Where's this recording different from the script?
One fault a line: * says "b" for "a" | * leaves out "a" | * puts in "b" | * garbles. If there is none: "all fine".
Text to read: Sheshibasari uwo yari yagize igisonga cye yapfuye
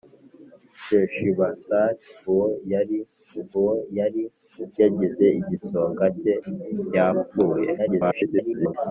* puts in "uwo yari"
* garbles